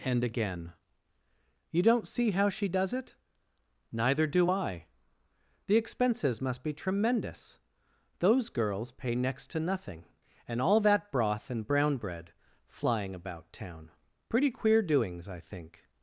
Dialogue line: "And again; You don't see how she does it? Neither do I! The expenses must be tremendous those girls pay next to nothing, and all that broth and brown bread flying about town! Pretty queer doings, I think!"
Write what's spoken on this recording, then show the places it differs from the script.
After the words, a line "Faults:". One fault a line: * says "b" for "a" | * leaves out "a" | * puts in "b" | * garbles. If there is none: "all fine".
"And again; You don't see how she does it? Neither do I! The expenses must be tremendous those girls pay next to nothing, and all that broth and brown bread flying about town! Pretty queer doings, I think!"
Faults:
all fine